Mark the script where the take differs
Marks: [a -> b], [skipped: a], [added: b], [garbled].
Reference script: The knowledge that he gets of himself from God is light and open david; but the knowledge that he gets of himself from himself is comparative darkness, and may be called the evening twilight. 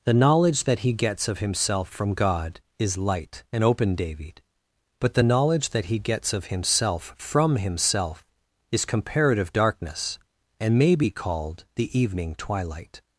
The knowledge that he gets of himself from God is light and open david; but the knowledge that he gets of himself from himself is comparative darkness, and may be called the evening twilight.